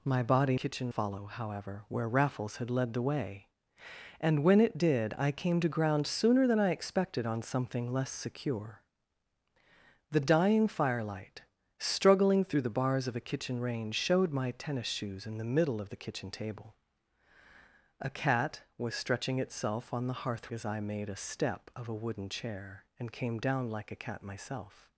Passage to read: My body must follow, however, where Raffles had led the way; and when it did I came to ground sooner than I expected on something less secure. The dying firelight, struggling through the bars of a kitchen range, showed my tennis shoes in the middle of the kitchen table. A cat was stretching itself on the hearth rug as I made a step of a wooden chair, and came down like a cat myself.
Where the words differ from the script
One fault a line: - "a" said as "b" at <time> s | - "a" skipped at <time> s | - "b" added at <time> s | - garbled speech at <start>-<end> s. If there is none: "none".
- "must" said as "kitchen" at 0.6 s
- "rug" skipped at 20.5 s